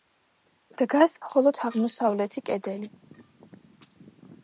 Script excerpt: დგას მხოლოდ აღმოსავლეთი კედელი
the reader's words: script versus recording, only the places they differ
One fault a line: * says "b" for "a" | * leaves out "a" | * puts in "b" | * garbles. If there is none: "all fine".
all fine